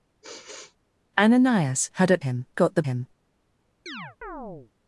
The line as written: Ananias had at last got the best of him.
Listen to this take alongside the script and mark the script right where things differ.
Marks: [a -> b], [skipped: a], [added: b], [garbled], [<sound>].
[sigh] Ananias had at [last -> him] got the [skipped: best of] him. [chirp]